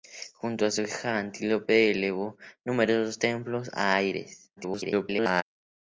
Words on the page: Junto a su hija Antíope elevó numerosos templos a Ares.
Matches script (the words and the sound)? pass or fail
fail